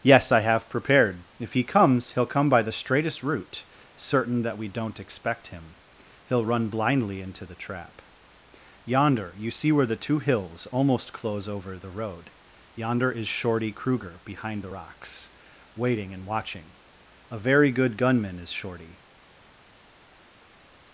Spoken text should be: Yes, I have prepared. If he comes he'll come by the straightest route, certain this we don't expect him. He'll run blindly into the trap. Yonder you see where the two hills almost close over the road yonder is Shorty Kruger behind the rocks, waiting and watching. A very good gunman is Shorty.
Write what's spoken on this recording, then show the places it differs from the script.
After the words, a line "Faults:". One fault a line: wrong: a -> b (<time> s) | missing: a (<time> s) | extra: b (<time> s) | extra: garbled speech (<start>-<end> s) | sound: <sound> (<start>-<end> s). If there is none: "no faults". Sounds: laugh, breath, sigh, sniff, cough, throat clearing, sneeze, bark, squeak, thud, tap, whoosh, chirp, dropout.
Yes, I have prepared. If he comes he'll come by the straightest route, certain that we don't expect him. He'll run blindly into the trap. Yonder you see where the two hills almost close over the road yonder is Shorty Kruger behind the rocks, waiting and watching. A very good gunman is Shorty.
Faults:
wrong: this -> that (4.4 s)